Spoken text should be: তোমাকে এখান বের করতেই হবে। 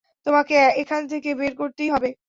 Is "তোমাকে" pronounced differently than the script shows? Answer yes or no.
no